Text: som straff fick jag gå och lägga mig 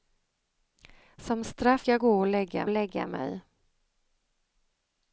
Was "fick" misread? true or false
true